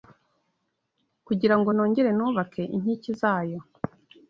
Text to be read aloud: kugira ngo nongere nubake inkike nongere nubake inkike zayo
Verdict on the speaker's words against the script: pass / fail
fail